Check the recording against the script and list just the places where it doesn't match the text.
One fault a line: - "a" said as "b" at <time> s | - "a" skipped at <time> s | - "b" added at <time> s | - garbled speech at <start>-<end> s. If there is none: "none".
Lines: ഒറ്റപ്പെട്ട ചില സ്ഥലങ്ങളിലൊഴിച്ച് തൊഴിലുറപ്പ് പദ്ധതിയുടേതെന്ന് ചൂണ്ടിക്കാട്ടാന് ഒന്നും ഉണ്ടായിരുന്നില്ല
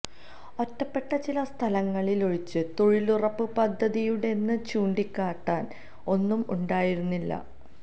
none